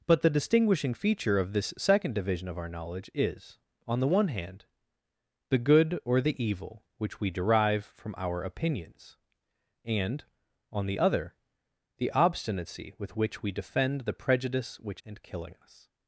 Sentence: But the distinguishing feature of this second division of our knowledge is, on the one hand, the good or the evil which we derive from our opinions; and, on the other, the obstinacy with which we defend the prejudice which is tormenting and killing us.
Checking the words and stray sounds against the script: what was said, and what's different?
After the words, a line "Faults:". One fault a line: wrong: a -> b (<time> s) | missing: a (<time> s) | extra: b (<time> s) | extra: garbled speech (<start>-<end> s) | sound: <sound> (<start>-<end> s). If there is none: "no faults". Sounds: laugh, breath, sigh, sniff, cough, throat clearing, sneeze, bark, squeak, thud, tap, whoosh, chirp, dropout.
But the distinguishing feature of this second division of our knowledge is, on the one hand, the good or the evil which we derive from our opinions; and, on the other, the obstinacy with which we defend the prejudice which and killing us.
Faults:
missing: is tormenting (15.0 s)